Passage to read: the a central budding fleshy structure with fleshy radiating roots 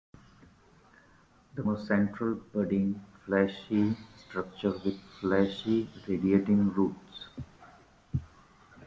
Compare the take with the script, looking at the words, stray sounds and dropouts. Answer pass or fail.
pass